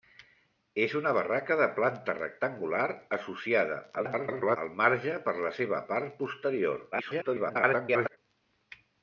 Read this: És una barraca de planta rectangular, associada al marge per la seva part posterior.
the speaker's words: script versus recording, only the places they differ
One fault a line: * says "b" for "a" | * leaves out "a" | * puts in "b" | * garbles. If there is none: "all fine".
* garbles
* garbles